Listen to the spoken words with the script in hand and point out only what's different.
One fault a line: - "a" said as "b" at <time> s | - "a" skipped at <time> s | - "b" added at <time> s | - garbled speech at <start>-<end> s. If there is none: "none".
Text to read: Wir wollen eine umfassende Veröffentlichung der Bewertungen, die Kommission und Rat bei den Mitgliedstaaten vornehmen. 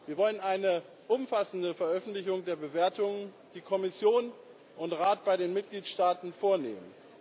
none